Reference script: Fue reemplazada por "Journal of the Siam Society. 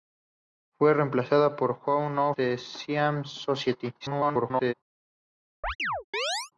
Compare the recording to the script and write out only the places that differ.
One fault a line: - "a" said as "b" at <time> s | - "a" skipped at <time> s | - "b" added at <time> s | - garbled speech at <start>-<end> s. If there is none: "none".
- "of" skipped at 2.3 s
- garbled speech at 4.0-4.7 s